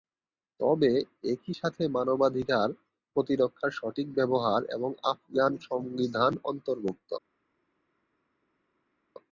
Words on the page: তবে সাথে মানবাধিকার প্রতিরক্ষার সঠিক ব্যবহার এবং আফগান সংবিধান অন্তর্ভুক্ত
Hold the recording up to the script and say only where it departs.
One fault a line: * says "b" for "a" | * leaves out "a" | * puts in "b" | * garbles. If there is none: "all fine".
* puts in "একই"